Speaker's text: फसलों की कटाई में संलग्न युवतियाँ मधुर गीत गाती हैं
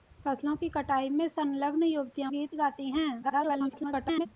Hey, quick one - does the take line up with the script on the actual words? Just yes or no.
no